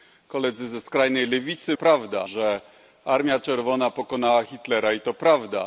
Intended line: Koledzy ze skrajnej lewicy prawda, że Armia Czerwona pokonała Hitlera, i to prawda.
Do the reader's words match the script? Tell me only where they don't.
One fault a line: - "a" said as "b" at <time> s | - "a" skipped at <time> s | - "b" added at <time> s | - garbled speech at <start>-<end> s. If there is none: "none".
none